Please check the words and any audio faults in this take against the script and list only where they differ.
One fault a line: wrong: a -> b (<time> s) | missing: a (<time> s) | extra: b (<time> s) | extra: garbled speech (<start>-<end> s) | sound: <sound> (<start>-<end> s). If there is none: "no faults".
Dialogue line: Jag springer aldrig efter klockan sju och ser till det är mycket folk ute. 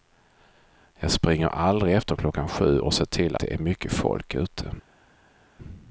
no faults